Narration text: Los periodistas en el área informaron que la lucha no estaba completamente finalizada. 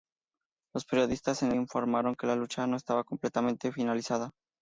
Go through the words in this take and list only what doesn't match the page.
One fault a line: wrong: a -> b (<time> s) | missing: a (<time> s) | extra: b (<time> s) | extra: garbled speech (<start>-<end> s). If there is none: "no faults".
missing: el área (1.5 s)